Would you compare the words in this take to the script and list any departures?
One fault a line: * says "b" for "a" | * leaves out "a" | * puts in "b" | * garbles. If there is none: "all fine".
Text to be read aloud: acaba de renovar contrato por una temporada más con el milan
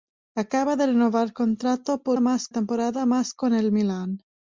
* says "más" for "una"